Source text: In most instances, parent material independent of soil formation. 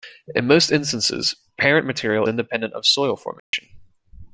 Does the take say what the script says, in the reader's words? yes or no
yes